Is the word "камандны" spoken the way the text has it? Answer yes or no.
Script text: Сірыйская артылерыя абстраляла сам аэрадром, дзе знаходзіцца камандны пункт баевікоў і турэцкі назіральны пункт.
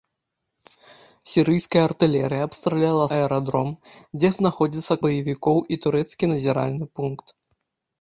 no